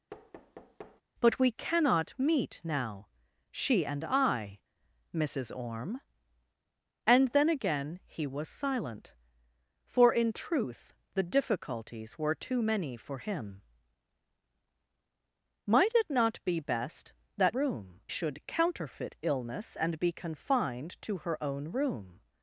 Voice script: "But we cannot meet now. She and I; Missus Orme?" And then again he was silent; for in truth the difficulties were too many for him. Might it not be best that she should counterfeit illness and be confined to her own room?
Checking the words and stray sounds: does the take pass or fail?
fail